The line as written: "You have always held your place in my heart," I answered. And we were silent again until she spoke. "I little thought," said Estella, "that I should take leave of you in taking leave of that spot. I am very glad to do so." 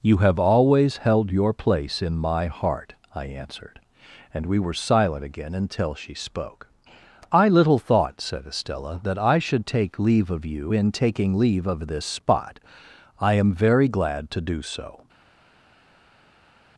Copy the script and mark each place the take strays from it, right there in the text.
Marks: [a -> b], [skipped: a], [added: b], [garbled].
"You have always held your place in my heart," I answered. And we were silent again until she spoke. "I little thought," said Estella, "that I should take leave of you in taking leave of [that -> this] spot. I am very glad to do so."